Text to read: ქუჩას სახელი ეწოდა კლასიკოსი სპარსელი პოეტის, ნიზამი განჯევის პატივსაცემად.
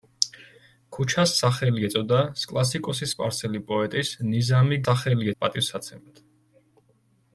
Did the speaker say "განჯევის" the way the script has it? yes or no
no